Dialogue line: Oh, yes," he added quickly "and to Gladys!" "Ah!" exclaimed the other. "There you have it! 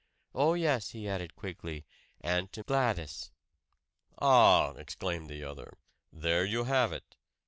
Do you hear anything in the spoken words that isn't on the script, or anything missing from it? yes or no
no